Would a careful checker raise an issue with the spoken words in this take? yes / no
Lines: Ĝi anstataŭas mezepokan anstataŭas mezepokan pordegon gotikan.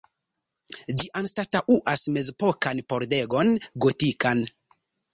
yes